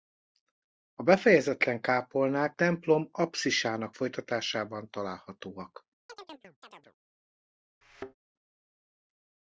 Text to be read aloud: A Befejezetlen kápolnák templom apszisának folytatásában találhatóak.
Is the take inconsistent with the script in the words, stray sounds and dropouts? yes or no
yes